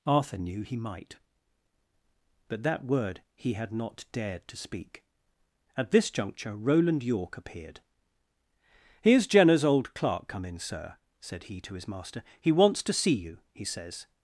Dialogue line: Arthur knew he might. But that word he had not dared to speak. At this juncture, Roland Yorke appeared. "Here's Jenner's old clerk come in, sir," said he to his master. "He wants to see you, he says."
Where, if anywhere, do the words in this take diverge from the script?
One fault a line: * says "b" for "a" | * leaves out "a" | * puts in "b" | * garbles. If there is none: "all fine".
all fine